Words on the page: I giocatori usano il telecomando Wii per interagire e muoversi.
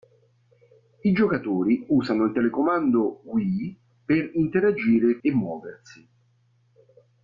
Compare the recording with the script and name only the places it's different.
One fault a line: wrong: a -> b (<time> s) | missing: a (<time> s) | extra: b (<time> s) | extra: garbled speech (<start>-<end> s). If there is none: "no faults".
no faults